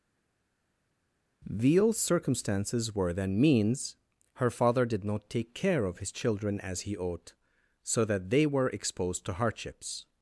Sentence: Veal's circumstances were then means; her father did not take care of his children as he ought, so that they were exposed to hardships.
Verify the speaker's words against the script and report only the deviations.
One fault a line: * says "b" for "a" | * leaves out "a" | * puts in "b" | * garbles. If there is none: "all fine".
all fine